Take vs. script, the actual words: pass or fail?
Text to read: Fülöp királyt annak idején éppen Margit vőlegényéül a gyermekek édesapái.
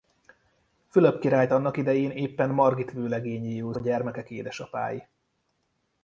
pass